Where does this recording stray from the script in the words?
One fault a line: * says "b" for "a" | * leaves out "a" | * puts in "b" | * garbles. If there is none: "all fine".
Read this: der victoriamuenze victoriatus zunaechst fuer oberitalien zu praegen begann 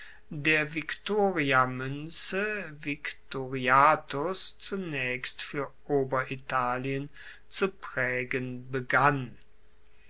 all fine